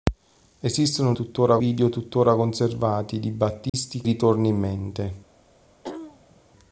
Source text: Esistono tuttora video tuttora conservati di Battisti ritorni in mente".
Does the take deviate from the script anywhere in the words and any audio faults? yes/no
yes